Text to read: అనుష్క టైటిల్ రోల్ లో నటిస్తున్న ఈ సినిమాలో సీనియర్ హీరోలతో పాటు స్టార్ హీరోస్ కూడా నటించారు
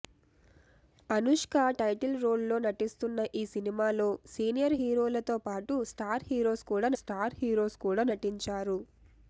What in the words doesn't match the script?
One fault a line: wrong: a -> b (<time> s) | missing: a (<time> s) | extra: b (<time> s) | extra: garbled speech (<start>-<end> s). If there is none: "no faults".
extra: స్టార్ హీరోస్ కూడా (7.0 s)